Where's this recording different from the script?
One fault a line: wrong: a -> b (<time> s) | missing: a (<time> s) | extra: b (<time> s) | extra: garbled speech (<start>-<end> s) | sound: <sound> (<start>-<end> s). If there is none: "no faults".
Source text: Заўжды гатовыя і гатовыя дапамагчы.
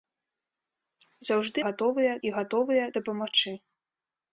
no faults